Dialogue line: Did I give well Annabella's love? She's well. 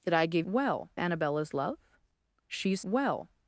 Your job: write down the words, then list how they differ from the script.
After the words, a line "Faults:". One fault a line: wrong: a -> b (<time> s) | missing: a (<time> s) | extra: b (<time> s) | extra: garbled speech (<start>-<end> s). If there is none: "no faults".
Did I give well Annabella's love? She's well.
Faults:
no faults